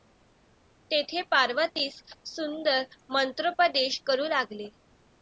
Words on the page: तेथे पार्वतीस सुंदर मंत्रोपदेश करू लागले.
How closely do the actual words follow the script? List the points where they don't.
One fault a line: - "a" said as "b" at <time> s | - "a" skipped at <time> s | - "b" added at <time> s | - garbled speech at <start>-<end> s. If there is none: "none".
none